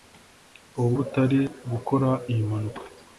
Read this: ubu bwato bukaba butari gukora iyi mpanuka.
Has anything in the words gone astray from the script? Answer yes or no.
yes